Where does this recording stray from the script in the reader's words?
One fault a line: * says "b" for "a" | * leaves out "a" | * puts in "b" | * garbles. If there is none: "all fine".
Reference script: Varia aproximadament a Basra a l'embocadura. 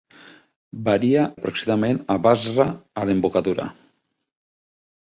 all fine